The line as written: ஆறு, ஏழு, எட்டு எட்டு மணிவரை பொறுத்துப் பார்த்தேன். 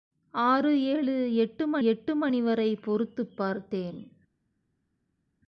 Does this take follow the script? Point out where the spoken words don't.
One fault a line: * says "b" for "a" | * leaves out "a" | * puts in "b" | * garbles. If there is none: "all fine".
all fine